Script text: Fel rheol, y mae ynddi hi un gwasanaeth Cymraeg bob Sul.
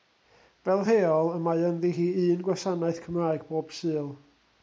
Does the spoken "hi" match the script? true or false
true